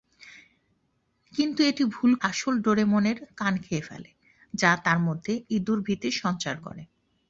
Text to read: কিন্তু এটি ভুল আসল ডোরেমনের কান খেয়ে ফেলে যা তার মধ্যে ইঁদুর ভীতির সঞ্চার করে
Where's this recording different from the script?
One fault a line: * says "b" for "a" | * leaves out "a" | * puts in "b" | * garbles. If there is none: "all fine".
all fine